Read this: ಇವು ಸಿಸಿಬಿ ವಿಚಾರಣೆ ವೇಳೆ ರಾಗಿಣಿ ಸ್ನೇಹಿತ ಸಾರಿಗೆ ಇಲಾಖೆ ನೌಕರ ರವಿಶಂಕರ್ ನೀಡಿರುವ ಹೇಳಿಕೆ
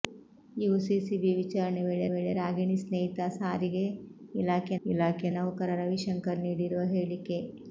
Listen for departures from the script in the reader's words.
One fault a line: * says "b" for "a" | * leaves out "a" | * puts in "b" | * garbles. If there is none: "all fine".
* puts in "ವೇಳೆ"
* puts in "ಇಲಾಖೆ"